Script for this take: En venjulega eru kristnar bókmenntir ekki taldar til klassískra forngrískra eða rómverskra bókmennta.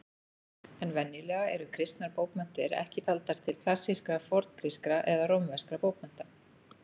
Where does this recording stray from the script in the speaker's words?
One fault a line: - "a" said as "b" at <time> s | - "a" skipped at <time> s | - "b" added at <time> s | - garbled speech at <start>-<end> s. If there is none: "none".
none